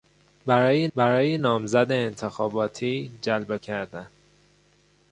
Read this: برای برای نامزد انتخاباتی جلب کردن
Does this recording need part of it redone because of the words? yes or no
no